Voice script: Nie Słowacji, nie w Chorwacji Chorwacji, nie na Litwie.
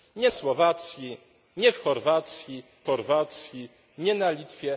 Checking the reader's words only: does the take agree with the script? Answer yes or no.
yes